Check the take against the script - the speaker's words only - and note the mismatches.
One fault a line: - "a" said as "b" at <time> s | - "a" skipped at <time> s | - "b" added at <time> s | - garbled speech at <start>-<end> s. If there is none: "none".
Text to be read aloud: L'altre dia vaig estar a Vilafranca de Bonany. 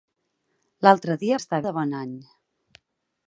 - "vaig" skipped at 1.4 s
- "Vilafranca" skipped at 1.6 s